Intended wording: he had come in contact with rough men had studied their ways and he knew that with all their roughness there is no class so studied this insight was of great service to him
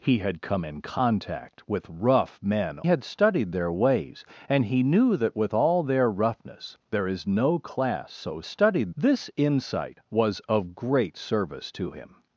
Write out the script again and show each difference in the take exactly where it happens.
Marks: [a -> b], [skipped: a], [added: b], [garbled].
he had come in contact with rough men had studied their ways and he knew that with all their roughness there is no class so studied this insight was of great service to him